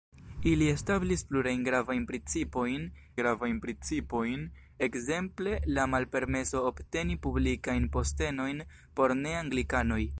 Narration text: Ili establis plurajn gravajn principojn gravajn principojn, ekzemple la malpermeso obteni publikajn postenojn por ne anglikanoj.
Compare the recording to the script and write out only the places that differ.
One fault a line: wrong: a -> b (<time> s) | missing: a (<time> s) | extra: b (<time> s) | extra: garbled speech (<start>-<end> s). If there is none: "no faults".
no faults